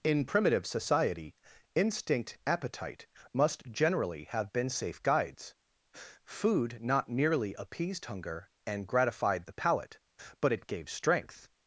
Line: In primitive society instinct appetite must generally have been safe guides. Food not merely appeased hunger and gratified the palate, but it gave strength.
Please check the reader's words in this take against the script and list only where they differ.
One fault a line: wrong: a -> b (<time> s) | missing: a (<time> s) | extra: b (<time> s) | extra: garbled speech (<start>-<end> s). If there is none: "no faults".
no faults